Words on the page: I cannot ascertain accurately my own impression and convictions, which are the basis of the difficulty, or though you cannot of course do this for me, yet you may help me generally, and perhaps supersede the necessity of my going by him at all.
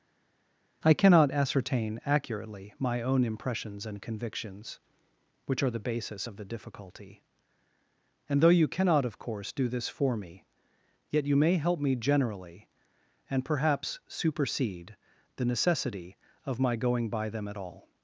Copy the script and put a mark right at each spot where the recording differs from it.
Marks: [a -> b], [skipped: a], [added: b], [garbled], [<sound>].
I cannot ascertain accurately my own [impression -> impressions] and convictions, which are the basis of the difficulty, [or -> and] though you cannot of course do this for me, yet you may help me generally, and perhaps supersede the necessity of my going by [him -> them] at all.